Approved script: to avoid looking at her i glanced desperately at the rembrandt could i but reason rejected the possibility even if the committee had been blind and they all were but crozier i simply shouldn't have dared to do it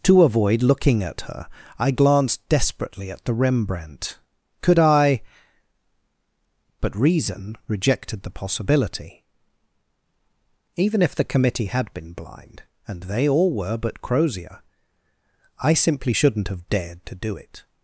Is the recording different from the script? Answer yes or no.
no